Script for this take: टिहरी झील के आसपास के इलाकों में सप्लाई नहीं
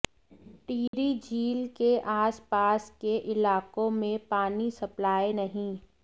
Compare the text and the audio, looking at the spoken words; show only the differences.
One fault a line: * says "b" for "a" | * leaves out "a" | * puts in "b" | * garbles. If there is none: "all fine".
* puts in "पानी"